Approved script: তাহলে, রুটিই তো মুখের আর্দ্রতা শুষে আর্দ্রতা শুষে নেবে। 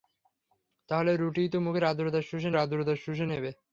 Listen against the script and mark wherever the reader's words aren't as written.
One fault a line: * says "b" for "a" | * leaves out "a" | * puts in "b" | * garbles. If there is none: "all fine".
all fine